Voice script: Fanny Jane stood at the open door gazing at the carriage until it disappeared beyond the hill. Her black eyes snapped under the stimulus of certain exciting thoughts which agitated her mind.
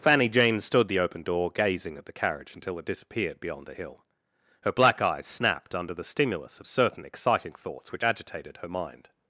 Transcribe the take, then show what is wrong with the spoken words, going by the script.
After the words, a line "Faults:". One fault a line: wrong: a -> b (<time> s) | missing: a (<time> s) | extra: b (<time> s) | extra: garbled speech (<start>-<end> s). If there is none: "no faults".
Fanny Jane stood the open door gazing at the carriage until it disappeared beyond the hill. Her black eyes snapped under the stimulus of certain exciting thoughts which agitated her mind.
Faults:
missing: at (0.9 s)